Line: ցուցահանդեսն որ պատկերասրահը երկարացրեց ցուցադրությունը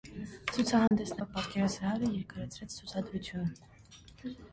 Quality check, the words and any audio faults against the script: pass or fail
fail